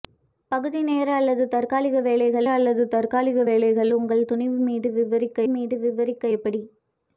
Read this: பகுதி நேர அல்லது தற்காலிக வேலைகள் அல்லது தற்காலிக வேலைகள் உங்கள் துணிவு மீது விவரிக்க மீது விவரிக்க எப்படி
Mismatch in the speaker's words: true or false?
false